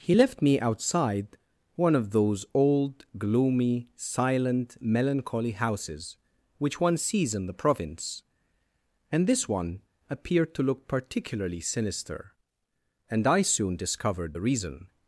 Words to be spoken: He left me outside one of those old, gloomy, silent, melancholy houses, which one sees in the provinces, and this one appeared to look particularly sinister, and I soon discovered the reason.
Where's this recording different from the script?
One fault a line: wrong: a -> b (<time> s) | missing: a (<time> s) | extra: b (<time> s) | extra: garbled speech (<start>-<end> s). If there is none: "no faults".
wrong: provinces -> province (7.5 s)